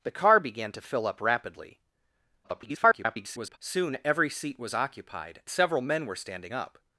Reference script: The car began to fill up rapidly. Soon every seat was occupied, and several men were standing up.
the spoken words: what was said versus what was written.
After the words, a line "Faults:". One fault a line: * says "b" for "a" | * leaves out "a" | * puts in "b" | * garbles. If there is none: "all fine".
The car began to fill up rapidly. [garbled] Soon every seat was occupied, several men were standing up.
Faults:
* garbles
* leaves out "and"